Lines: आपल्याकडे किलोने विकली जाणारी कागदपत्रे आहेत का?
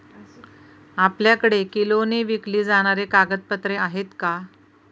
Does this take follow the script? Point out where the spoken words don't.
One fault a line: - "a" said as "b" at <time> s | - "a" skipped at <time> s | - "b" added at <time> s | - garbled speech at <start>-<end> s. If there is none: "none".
none